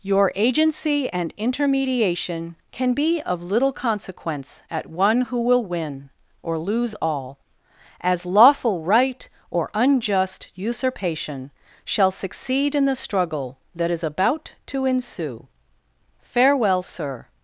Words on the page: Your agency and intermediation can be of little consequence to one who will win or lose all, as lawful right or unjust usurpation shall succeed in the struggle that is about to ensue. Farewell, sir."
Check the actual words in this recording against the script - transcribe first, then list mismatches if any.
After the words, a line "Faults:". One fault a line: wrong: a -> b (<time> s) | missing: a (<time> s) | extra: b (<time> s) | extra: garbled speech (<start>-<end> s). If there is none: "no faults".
Your agency and intermediation can be of little consequence at one who will win or lose all, as lawful right or unjust usurpation shall succeed in the struggle that is about to ensue. Farewell, sir."
Faults:
wrong: to -> at (4.7 s)